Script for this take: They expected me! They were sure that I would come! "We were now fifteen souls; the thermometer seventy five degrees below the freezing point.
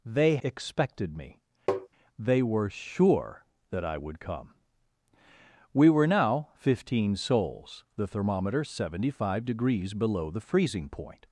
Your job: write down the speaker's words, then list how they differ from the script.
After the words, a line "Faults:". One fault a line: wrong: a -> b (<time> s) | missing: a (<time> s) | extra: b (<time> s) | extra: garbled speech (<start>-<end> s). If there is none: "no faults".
They expected me! They were sure that I would come! "We were now fifteen souls; the thermometer seventy five degrees below the freezing point.
Faults:
no faults